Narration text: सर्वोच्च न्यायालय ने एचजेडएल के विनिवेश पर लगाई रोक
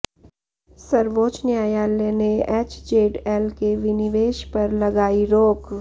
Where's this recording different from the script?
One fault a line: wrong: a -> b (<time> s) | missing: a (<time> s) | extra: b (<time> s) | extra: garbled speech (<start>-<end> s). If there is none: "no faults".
no faults